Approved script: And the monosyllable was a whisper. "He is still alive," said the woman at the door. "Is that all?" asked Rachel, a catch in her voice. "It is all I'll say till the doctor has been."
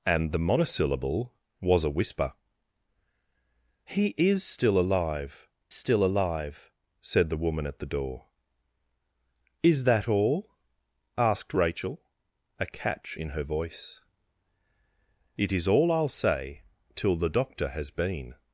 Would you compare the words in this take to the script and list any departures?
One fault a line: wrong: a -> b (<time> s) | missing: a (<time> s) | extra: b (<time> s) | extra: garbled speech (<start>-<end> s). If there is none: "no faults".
extra: still alive (5.7 s)